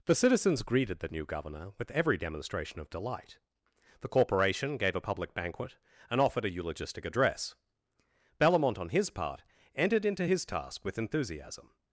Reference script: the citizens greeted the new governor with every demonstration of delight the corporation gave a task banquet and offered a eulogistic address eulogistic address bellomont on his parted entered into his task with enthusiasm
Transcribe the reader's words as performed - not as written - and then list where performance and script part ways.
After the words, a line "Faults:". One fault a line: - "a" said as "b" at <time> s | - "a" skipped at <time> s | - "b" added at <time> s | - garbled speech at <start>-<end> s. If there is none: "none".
the citizens greeted the new governor with every demonstration of delight the corporation gave a public banquet and offered a eulogistic address bellomont on his part entered into his task with enthusiasm
Faults:
- "task" said as "public" at 5.0 s
- "eulogistic address" skipped at 7.5 s
- "parted" said as "part" at 9.1 s